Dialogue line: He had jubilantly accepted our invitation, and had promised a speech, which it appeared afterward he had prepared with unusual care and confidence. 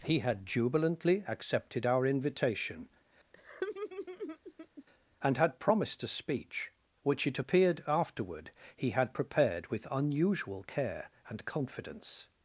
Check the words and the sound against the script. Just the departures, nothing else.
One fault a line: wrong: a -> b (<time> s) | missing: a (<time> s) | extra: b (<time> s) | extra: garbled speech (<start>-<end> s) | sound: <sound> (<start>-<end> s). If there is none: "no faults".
sound: laugh (3.3-4.8 s)